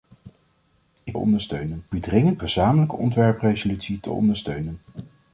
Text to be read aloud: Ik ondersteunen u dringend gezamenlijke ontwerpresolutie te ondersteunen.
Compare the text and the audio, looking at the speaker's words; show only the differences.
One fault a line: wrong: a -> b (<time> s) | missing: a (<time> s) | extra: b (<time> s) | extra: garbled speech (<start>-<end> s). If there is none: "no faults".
no faults